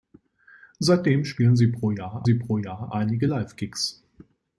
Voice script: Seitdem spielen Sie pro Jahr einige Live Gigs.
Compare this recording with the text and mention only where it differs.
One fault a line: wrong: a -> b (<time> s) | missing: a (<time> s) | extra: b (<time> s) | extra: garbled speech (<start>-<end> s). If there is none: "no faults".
extra: Sie pro Jahr (2.2 s)